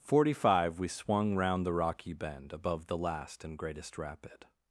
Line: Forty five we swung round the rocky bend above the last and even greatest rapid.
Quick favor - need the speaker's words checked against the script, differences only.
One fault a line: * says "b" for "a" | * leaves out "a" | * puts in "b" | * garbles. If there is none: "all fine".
* leaves out "even"